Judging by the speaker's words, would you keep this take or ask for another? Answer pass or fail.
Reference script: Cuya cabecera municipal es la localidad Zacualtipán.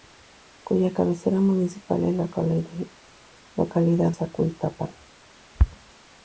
pass